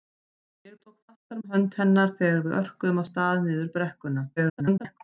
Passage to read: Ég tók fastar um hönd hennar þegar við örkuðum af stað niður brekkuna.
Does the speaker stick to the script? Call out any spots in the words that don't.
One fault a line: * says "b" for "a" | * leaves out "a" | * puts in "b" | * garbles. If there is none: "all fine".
* garbles